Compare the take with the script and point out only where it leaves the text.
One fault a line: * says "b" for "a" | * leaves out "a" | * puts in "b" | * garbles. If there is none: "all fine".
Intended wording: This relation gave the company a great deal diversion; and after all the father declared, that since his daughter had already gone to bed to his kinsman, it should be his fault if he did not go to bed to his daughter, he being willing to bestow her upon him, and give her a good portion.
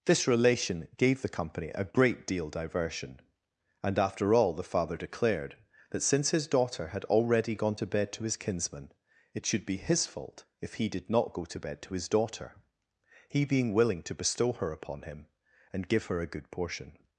all fine